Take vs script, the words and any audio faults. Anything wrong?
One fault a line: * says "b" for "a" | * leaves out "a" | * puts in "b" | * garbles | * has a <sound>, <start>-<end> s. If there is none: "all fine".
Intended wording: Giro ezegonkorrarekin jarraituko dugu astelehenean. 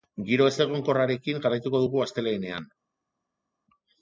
all fine